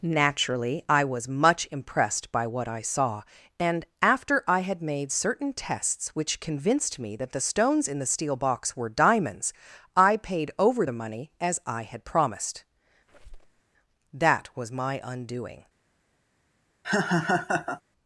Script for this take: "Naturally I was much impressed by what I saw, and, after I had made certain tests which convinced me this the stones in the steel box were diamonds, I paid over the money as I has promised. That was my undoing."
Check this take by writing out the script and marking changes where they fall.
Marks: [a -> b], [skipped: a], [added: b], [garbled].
"Naturally I was much impressed by what I saw, and, after I had made certain tests which convinced me [this -> that] the stones in the steel box were diamonds, I paid over the money as I [has -> had] promised. That was my undoing."